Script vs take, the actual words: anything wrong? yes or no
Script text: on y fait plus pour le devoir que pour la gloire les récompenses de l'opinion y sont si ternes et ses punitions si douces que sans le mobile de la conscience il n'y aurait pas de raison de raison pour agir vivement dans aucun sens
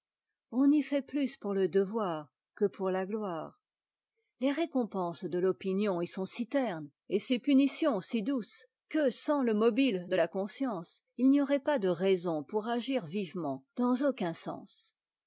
yes